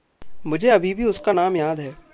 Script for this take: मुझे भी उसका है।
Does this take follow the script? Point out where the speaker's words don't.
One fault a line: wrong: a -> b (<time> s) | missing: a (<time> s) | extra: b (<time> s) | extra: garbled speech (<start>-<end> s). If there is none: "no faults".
extra: अभी (0.7 s)
extra: नाम याद (1.3 s)